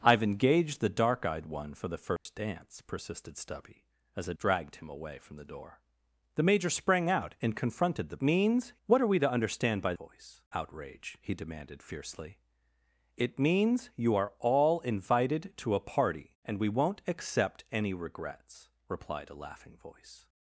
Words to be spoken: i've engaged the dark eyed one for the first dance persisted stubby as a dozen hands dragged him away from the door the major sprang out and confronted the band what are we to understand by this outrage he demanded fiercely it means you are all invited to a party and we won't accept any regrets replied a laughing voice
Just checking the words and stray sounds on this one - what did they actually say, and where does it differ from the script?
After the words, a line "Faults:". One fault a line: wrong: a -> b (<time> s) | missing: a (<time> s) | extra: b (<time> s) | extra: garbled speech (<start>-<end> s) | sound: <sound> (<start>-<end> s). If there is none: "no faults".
i've engaged the dark eyed one for the first dance persisted stubby as a dragged him away from the door the major sprang out and confronted the means what are we to understand by voice outrage he demanded fiercely it means you are all invited to a party and we won't accept any regrets replied a laughing voice
Faults:
sound: dropout (2.2-2.3 s)
missing: dozen hands (4.3 s)
wrong: band -> means (8.2 s)
wrong: this -> voice (9.9 s)